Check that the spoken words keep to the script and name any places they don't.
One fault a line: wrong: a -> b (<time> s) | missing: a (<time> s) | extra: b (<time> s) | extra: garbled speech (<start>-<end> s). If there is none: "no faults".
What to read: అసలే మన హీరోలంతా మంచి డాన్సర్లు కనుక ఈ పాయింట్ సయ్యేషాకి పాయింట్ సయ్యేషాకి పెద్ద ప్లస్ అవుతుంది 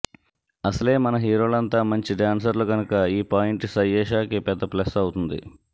missing: పాయింట్ సయ్యేషాకి (4.4 s)